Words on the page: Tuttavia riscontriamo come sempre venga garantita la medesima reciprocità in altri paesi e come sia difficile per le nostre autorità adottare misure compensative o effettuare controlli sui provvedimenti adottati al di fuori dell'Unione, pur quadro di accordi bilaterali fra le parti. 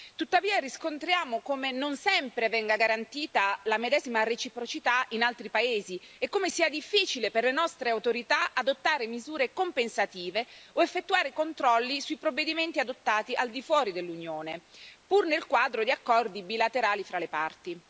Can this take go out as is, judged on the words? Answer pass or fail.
fail